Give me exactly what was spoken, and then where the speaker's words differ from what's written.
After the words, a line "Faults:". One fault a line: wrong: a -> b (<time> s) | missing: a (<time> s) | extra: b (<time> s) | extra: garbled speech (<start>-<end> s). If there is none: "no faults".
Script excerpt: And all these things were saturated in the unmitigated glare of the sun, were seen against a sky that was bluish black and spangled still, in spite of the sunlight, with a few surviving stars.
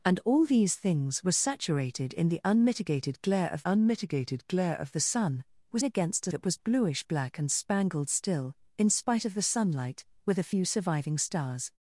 And all these things were saturated in the unmitigated glare of unmitigated glare of the sun, were against a that was bluish black and spangled still, in spite of the sunlight, with a few surviving stars.
Faults:
extra: unmitigated glare of (3.6 s)
missing: seen (5.8 s)
missing: sky (6.3 s)